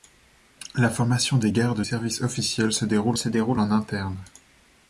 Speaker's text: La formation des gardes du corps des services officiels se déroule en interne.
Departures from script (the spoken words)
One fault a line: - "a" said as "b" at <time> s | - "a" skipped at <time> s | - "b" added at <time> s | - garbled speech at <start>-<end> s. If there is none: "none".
- "du corps des services officiels" said as "services officiels se déroule" at 1.8 s